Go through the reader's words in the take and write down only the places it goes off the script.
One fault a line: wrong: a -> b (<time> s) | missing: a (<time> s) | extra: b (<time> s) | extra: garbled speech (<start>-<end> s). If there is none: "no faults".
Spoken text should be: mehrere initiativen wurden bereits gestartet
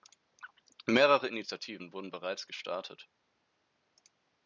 no faults